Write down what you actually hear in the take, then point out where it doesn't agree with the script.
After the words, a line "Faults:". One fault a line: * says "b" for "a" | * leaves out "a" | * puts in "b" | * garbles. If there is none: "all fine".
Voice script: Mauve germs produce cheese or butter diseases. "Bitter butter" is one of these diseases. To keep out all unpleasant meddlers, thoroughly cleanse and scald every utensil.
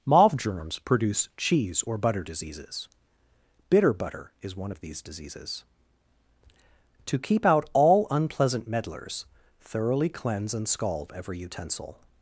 Mauve germs produce cheese or butter diseases. "Bitter butter" is one of these diseases. To keep out all unpleasant meddlers, thoroughly cleanse and scald every utensil.
Faults:
all fine